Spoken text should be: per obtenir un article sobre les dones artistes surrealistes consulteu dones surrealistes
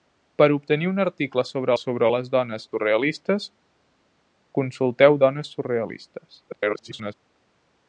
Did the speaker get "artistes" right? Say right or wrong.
wrong